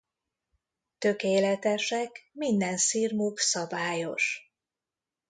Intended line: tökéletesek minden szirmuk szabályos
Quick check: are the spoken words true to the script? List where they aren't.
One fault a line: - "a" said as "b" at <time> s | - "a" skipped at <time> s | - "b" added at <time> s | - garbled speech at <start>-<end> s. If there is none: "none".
none